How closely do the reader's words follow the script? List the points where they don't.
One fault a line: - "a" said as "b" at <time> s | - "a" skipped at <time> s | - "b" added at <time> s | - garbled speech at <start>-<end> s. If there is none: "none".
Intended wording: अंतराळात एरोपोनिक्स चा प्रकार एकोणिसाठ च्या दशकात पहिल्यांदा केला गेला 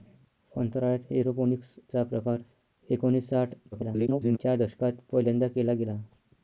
- garbled speech at 3.7-4.4 s